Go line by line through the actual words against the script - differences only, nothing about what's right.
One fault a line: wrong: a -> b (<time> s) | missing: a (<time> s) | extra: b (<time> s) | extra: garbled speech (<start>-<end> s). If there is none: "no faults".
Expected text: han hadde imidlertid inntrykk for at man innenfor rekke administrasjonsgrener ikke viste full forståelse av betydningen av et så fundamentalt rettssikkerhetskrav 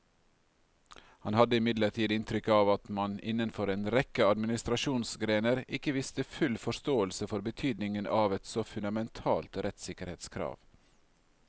wrong: for -> av (2.5 s)
extra: en (3.7 s)
wrong: av -> for (7.3 s)